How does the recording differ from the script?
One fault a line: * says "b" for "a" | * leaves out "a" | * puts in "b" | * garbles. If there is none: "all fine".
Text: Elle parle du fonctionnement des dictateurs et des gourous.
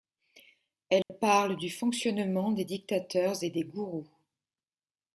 all fine